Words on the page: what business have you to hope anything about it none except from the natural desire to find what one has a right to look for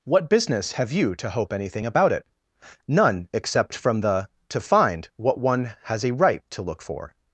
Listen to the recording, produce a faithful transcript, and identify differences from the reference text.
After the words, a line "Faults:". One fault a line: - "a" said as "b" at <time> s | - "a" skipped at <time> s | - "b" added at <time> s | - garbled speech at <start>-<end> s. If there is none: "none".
what business have you to hope anything about it none except from the to find what one has a right to look for
Faults:
- "natural desire" skipped at 4.3 s